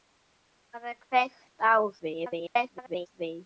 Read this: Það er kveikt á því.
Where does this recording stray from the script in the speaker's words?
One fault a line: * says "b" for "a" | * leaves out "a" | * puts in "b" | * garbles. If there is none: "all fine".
* garbles